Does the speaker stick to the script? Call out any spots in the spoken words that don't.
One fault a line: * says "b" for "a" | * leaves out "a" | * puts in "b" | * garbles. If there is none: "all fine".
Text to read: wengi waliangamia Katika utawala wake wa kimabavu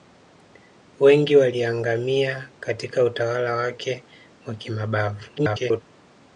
* garbles